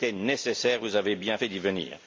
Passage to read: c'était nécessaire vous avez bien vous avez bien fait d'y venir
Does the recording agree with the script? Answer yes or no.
no